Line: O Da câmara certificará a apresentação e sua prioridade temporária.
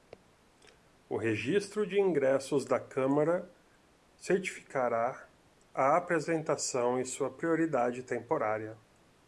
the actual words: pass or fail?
fail